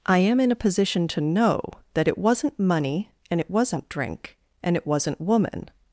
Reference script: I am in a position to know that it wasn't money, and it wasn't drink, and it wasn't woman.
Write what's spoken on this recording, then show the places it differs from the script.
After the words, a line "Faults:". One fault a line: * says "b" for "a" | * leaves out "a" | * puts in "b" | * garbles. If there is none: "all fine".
I am in a position to know that it wasn't money, and it wasn't drink, and it wasn't woman.
Faults:
all fine